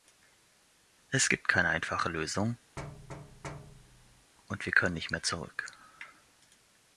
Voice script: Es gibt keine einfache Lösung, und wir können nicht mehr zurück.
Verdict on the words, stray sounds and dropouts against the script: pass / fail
fail